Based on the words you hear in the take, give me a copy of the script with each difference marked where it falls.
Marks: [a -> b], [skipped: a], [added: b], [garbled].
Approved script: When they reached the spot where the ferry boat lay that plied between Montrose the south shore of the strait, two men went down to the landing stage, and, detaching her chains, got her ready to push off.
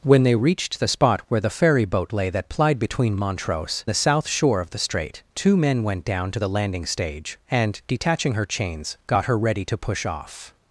When they reached the spot where the ferry boat lay that plied between Montrose the south shore of the strait, two men went down to the landing stage, and, detaching her chains, got her ready to push off.